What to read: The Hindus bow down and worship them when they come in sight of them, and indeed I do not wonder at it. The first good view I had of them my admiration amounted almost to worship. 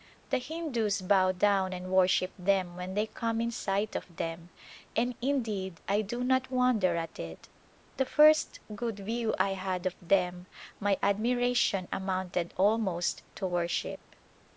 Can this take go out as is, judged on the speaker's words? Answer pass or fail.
pass